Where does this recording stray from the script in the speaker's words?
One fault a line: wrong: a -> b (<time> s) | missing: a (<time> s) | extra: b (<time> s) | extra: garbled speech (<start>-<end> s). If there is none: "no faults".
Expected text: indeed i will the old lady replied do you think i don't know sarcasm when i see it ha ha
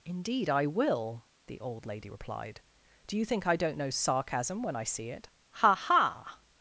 no faults